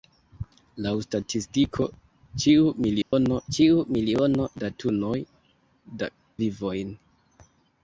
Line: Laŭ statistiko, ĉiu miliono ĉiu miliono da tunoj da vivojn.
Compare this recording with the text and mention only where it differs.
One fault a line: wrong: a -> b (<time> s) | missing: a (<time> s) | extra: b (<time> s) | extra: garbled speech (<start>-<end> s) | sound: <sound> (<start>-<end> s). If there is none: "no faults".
sound: dropout (3.0-3.1 s)